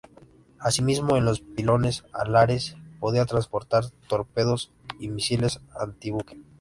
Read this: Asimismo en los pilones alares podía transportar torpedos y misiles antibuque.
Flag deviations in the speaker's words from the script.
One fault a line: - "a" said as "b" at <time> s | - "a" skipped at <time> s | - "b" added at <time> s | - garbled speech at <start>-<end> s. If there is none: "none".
none